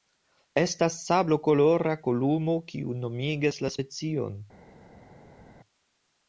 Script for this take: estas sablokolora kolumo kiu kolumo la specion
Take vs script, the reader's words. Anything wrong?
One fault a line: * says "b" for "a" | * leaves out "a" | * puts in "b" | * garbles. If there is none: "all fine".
* says "nomigas" for "kolumo"